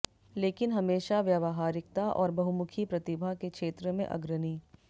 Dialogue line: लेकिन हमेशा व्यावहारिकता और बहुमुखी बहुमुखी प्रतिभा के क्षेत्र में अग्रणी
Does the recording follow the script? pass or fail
fail